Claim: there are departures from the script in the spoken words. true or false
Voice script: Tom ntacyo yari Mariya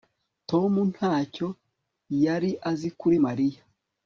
true